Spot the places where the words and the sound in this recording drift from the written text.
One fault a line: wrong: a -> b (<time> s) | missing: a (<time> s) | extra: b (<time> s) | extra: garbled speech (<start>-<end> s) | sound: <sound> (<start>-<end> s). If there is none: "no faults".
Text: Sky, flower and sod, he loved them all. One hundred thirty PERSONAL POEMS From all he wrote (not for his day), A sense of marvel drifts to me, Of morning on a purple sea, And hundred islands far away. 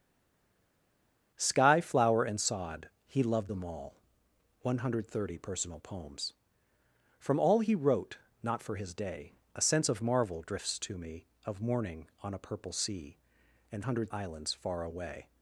no faults